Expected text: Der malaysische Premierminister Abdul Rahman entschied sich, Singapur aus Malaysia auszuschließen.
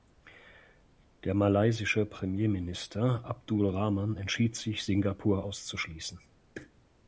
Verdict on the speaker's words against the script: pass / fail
fail